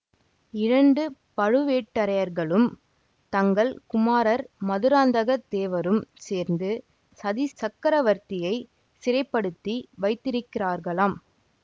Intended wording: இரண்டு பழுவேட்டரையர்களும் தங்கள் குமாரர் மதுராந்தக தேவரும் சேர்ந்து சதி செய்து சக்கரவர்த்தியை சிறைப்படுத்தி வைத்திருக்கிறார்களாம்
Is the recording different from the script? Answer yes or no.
yes